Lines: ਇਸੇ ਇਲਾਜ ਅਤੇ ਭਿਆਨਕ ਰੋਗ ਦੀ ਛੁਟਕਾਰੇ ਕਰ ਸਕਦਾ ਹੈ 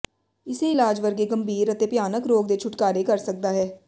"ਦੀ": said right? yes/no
no